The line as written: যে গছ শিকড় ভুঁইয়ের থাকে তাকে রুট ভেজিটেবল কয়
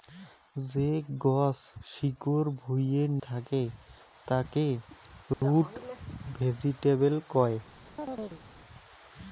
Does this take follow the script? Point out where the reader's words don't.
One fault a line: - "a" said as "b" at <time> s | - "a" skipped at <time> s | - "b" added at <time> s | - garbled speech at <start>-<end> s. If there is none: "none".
none